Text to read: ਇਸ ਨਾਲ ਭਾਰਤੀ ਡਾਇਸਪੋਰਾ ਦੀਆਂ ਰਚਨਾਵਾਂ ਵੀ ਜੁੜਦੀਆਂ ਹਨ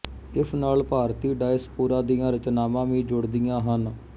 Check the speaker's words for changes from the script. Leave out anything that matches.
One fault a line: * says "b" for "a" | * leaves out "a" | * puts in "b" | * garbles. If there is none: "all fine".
all fine